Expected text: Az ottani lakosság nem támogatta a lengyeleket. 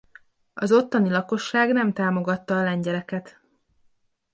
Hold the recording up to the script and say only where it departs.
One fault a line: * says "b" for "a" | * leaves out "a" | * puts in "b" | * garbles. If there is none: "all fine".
all fine